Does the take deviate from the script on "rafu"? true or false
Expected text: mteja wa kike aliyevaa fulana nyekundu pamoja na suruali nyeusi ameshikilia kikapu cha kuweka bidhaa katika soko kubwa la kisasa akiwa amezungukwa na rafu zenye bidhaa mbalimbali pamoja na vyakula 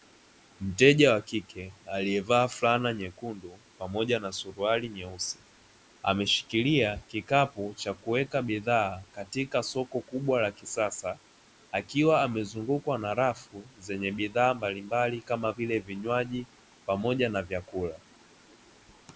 false